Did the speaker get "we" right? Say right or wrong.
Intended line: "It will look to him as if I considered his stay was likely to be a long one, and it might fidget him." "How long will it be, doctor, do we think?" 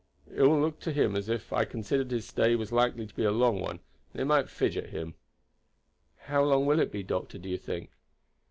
wrong